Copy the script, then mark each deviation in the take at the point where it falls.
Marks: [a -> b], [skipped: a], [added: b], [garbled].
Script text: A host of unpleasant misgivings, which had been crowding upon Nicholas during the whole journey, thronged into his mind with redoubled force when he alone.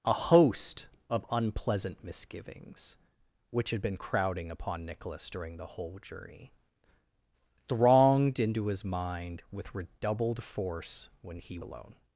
A host of unpleasant misgivings, which had been crowding upon Nicholas during the whole journey, thronged into his mind with redoubled force when he alone.